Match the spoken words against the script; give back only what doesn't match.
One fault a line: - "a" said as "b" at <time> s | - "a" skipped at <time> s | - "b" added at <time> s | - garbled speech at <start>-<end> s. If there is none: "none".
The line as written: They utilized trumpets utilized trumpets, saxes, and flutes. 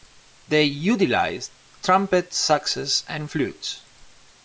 - "utilized trumpets" skipped at 2.4 s